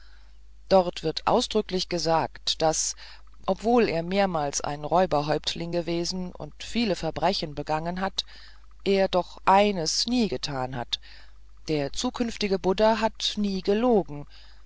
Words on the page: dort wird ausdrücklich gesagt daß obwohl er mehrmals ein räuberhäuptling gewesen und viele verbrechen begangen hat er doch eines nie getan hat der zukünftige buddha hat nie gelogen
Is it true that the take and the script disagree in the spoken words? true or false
false